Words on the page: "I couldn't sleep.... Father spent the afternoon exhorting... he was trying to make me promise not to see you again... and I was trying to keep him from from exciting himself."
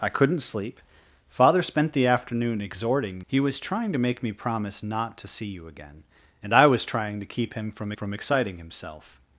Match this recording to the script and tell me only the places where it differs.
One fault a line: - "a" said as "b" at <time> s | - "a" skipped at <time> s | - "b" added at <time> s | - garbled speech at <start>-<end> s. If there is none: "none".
none